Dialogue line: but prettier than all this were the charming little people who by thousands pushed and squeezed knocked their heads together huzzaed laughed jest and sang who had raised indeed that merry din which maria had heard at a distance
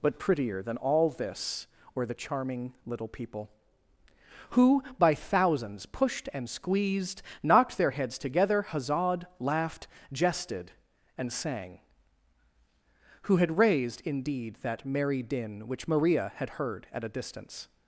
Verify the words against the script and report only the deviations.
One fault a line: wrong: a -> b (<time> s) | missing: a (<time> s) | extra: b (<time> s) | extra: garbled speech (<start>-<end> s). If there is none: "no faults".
wrong: jest -> jested (10.1 s)